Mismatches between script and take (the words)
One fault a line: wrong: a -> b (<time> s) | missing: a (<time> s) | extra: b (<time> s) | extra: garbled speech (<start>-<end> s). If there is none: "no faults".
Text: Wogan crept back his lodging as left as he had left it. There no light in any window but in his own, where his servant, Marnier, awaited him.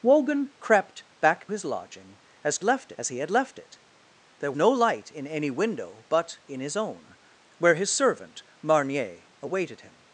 no faults